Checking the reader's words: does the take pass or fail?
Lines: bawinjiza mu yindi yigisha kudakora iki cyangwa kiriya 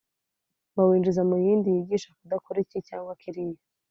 pass